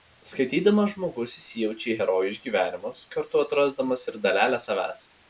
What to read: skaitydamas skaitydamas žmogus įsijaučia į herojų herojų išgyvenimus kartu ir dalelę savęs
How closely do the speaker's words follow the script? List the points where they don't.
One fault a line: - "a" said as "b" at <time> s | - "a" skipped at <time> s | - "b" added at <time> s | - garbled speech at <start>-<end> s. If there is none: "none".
- "skaitydamas" skipped at 0.9 s
- "herojų" skipped at 2.3 s
- "atrasdamas" added at 3.5 s